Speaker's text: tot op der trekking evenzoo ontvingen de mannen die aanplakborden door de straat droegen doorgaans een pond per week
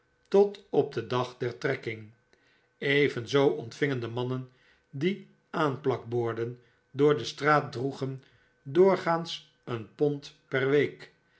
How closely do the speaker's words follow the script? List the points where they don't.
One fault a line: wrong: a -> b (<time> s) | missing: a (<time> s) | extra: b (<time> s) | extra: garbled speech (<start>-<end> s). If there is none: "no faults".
extra: den dag (0.9 s)